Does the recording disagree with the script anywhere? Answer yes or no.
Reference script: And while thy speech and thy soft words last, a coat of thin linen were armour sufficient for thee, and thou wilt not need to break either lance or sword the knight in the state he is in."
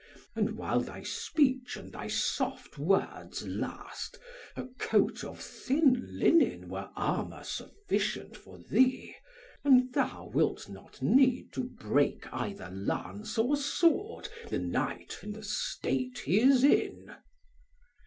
no